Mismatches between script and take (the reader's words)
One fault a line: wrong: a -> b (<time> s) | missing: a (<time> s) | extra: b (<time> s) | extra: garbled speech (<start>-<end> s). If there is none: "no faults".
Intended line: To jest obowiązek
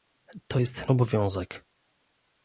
no faults